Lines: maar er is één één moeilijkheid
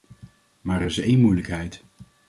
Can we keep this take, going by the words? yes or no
no